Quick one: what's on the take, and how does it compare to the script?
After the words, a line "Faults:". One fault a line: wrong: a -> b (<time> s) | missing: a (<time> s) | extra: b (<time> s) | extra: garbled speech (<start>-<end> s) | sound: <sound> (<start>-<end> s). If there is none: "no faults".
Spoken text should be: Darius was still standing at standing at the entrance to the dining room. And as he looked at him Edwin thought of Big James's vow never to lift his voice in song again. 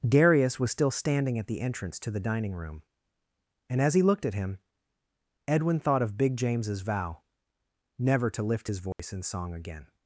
Darius was still standing at the entrance to the dining room. And as he looked at him Edwin thought of Big James's vow never to lift his voice in song again.
Faults:
missing: standing at (1.5 s)
sound: dropout (8.9-9.0 s)